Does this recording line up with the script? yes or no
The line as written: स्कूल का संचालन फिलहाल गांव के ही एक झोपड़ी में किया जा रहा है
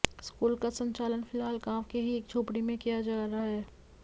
yes